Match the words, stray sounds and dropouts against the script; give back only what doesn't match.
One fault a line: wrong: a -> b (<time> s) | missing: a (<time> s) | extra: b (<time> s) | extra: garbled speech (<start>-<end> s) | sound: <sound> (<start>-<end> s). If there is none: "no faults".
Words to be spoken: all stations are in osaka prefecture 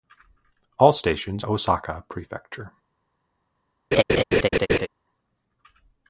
missing: are in (1.4 s)
sound: laugh (3.9-4.9 s)